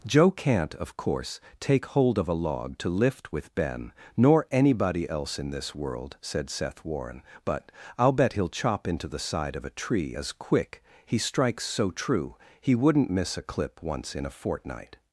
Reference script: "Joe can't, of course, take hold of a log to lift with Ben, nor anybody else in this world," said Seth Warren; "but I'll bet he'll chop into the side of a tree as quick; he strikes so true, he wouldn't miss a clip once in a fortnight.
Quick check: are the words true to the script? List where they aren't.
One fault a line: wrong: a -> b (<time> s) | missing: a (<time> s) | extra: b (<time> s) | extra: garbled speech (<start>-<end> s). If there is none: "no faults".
no faults